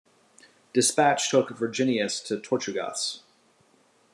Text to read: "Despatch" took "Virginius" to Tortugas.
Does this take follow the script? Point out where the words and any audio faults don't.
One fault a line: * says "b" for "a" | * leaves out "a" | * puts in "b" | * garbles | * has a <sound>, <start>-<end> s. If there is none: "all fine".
all fine